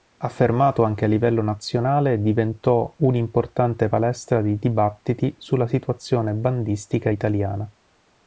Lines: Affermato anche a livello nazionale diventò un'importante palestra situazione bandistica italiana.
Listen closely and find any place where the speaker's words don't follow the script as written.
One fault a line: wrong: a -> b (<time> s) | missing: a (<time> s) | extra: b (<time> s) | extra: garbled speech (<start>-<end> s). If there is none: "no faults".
extra: di dibattiti sulla (4.4 s)